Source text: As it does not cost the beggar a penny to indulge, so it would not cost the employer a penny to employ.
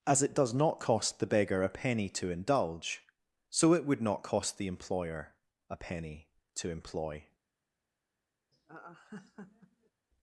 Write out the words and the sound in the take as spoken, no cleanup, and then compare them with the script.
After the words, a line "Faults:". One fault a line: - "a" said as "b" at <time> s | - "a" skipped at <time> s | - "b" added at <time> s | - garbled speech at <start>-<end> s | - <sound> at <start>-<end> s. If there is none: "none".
As it does not cost the beggar a penny to indulge, so it would not cost the employer a penny to employ.
Faults:
- laugh at 8.5-9.9 s